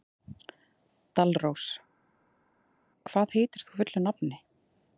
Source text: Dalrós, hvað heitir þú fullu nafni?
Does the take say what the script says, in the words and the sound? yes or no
yes